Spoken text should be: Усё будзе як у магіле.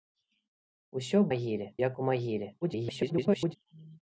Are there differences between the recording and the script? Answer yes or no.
yes